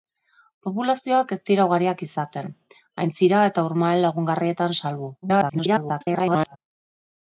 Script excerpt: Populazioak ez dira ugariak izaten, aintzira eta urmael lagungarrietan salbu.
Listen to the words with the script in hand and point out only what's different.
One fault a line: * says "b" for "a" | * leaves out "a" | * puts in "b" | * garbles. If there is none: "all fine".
* garbles